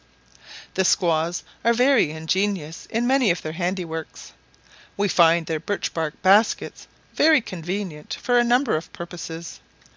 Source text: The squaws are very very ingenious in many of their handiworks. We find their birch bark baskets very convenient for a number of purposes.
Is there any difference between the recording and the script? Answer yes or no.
yes